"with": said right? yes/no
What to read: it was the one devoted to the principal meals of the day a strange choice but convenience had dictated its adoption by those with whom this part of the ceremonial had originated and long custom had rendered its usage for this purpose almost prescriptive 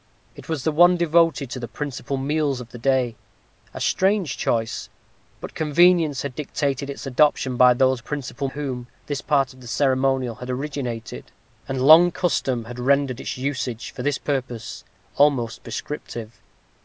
no